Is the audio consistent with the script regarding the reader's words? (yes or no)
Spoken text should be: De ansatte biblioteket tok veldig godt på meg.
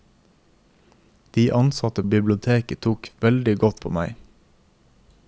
yes